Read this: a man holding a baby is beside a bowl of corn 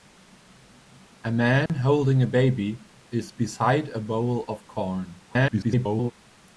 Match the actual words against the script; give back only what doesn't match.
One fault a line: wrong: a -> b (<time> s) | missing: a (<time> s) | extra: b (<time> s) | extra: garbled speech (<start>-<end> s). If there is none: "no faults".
extra: garbled speech (5.3-6.1 s)